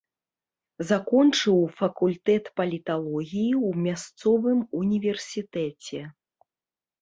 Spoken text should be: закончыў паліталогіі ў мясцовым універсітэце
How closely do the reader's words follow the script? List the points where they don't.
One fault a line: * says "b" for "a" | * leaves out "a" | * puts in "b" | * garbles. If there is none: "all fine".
* puts in "факультэт"